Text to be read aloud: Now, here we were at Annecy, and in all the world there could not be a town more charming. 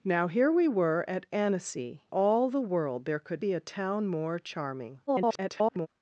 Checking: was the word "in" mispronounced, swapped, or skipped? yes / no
yes